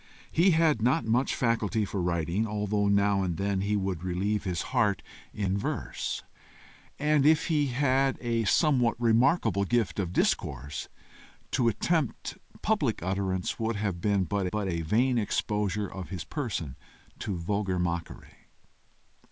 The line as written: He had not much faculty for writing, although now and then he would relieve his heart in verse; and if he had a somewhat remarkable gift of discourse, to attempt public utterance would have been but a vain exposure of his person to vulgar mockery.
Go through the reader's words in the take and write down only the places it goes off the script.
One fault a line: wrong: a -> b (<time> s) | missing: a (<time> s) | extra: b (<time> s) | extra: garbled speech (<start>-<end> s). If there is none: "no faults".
extra: but (14.5 s)